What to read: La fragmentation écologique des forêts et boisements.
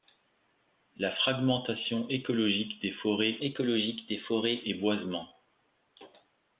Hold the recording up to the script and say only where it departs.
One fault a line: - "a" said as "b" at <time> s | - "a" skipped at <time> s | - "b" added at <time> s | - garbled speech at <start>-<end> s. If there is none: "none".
- "écologique des forêts" added at 3.4 s